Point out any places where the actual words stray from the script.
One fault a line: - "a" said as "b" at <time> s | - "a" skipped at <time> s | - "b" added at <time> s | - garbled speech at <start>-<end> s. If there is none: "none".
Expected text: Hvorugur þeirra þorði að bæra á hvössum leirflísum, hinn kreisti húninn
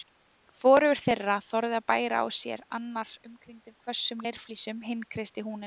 - "sér annar umkringdur" added at 2.4 s